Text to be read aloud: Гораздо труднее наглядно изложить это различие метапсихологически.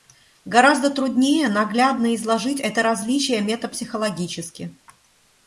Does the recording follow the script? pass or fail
pass